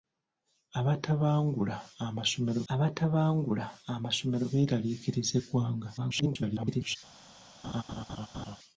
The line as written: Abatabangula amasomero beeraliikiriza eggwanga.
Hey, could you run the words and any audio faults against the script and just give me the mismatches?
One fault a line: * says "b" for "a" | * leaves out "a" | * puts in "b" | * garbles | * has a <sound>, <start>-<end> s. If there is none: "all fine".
* puts in "abatabangula amasomero"
* garbles
* has a laugh, 7.6-8.6 s